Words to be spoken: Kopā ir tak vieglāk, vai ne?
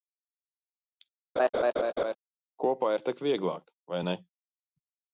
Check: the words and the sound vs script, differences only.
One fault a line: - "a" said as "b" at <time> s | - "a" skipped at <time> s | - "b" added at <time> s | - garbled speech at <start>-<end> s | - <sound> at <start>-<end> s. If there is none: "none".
- laugh at 1.4-2.2 s